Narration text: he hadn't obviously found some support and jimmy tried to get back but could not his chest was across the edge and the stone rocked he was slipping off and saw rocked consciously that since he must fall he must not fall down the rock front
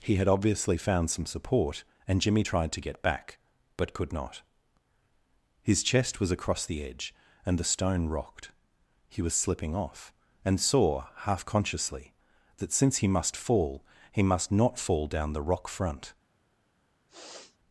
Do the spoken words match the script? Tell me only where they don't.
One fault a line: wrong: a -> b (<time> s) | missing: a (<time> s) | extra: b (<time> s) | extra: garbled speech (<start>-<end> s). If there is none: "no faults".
wrong: hadn't -> had (0.1 s)
wrong: rocked -> half (11.2 s)